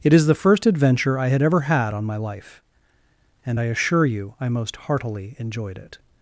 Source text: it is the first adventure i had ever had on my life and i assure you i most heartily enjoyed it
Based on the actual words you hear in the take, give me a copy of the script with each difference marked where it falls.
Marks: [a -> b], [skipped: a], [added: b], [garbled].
it is the first adventure i had ever had on my life and i assure you i most heartily enjoyed it